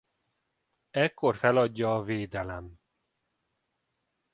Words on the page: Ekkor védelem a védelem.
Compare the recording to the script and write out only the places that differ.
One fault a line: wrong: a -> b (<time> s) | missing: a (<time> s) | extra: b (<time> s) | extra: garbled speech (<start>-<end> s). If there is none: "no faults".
wrong: védelem -> feladja (1.3 s)